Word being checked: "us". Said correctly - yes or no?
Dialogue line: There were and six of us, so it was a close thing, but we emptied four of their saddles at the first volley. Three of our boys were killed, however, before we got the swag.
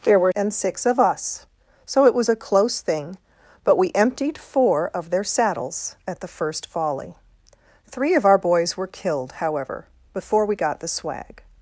yes